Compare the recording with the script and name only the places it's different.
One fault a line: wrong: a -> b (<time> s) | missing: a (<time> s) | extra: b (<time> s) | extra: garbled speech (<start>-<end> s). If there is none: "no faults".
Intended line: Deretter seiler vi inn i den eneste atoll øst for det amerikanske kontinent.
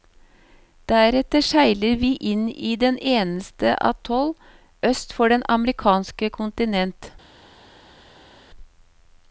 no faults